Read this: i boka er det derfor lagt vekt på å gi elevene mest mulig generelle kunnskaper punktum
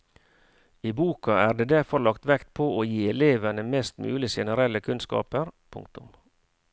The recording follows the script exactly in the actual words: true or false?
true